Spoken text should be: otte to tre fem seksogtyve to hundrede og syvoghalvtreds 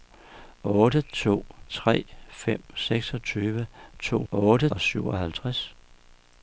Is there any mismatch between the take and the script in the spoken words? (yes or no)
yes